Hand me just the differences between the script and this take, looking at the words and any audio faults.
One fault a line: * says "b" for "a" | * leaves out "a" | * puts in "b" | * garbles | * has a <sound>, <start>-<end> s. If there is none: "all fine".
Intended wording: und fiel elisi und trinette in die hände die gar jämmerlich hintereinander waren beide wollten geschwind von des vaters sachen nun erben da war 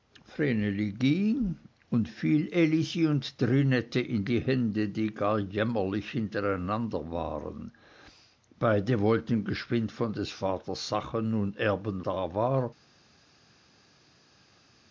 all fine